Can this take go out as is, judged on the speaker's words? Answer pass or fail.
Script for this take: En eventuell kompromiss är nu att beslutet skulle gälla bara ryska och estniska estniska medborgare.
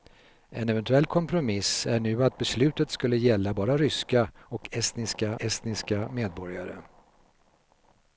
pass